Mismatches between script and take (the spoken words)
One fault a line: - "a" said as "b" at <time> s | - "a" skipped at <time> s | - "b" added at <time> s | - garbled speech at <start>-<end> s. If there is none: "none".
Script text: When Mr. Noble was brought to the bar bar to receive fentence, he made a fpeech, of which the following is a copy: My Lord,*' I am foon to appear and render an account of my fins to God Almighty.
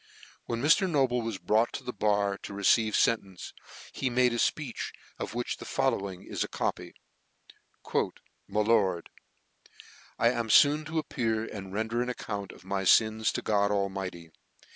- "bar" skipped at 2.4 s